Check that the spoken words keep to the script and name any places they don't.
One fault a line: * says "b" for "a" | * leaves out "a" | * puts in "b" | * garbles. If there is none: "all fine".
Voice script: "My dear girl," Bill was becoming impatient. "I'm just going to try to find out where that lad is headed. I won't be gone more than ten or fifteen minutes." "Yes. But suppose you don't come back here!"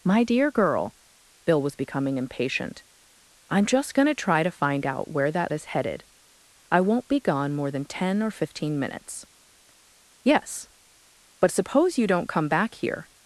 * leaves out "lad"